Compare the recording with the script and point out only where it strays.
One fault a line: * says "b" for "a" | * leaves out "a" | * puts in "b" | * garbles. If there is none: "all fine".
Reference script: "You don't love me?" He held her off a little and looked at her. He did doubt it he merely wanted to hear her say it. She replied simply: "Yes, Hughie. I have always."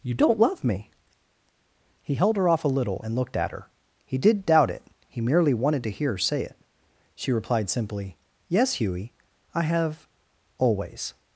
all fine